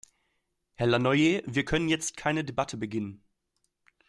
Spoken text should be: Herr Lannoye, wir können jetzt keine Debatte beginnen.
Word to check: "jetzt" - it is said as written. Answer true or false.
true